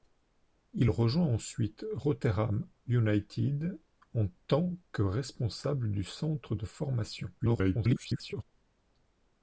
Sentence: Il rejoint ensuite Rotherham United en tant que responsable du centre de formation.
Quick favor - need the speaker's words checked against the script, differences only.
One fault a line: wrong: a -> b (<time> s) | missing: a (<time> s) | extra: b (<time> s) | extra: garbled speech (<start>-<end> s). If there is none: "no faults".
extra: garbled speech (7.4-8.4 s)